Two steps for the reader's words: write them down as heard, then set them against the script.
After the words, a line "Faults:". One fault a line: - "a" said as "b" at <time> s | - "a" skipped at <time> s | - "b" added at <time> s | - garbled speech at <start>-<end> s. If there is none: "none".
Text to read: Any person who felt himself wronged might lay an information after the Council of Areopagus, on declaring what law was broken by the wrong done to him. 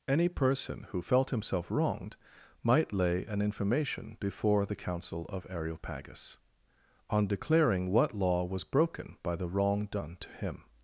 Any person who felt himself wronged might lay an information before the Council of Areopagus, on declaring what law was broken by the wrong done to him.
Faults:
- "after" said as "before" at 4.2 s